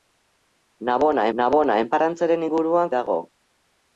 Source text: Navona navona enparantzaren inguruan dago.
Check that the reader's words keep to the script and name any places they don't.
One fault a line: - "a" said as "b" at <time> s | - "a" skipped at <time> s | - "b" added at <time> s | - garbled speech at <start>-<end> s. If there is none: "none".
none